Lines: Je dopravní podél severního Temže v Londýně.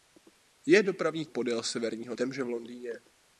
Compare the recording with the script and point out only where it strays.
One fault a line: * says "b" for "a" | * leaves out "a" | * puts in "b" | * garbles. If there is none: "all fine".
all fine